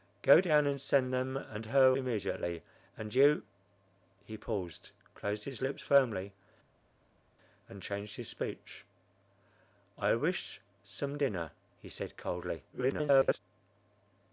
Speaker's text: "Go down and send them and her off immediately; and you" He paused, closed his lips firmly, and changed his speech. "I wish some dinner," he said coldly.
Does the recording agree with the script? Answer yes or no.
no